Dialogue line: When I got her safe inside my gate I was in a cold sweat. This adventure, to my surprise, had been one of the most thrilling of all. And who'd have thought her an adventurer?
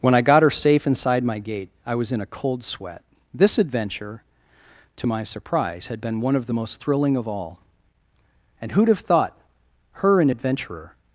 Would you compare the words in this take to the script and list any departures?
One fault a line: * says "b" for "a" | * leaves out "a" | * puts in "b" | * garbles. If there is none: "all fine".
all fine